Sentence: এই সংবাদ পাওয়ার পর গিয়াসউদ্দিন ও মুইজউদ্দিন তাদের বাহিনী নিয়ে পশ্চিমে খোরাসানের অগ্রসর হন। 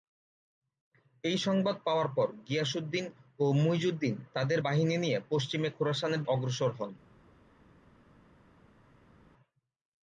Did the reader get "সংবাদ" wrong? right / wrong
right